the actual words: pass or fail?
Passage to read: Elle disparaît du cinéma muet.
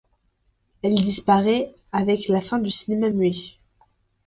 fail